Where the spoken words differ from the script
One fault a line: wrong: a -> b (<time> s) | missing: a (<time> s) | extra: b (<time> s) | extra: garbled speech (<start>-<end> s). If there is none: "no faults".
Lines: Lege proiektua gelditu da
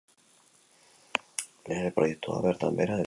extra: bertan behera (2.5 s)